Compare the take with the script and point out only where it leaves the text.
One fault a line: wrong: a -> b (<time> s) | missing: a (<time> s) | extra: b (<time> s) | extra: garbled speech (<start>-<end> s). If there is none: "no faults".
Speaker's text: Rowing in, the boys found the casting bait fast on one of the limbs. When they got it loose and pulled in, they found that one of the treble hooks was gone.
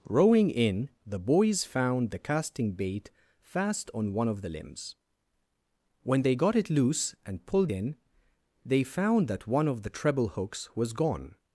no faults